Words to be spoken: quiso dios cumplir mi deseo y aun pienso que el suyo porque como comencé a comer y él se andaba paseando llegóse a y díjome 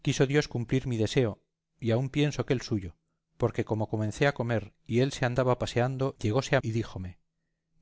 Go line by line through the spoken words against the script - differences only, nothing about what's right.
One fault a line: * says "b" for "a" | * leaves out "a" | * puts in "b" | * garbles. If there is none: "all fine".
all fine